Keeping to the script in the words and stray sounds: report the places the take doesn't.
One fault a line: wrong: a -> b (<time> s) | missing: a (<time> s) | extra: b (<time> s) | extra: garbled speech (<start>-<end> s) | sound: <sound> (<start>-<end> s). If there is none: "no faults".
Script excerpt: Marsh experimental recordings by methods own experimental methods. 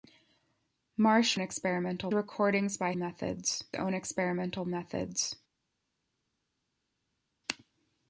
no faults